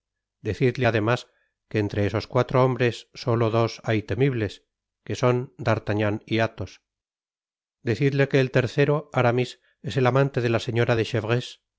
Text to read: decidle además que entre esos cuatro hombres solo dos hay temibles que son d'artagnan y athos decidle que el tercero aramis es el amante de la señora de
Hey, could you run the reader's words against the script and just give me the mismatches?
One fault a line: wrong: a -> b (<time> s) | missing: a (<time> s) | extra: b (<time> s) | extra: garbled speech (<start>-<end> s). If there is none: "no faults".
no faults